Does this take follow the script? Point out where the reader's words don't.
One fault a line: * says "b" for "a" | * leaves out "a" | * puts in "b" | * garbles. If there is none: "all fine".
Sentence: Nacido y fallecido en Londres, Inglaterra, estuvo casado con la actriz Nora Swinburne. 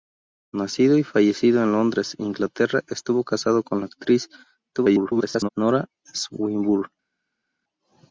* garbles